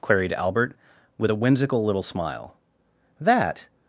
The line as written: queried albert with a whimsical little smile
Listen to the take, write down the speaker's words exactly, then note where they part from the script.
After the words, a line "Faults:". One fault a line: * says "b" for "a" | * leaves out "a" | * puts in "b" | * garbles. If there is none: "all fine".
queried albert with a whimsical little smile that
Faults:
* puts in "that"